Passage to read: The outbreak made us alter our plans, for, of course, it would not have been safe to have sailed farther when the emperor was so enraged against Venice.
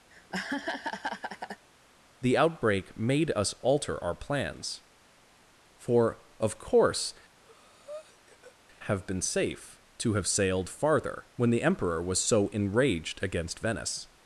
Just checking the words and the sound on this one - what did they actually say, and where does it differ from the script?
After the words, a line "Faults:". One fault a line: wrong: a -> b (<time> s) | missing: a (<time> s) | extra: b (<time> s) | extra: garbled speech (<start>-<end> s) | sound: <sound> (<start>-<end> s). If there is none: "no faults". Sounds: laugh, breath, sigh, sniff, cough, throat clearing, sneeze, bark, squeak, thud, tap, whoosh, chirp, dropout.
The outbreak made us alter our plans, for, of course, have been safe to have sailed farther when the emperor was so enraged against Venice.
Faults:
sound: laugh (0.1-1.7 s)
missing: it would not (7.1 s)
sound: breath (7.4-8.6 s)